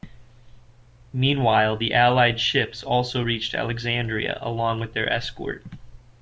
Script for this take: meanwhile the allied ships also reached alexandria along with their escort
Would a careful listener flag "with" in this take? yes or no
no